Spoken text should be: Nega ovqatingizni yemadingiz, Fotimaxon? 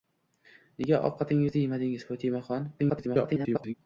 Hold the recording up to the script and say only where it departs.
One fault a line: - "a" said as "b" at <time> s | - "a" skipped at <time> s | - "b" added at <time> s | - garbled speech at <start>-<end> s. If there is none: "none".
- garbled speech at 2.8-3.7 s